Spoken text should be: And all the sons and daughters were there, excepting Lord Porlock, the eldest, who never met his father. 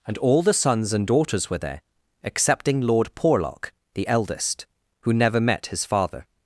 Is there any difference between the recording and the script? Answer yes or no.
no